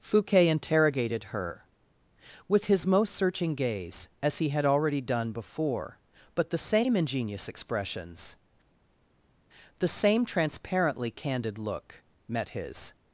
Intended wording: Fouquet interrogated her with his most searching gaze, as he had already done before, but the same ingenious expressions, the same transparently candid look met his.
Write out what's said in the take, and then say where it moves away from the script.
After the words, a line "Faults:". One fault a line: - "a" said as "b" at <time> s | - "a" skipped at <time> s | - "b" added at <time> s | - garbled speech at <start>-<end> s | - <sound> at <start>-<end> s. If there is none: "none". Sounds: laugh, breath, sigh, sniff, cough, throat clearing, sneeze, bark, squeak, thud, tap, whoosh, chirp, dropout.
Fouquet interrogated her with his most searching gaze, as he had already done before, but the same ingenious expressions, the same transparently candid look met his.
Faults:
none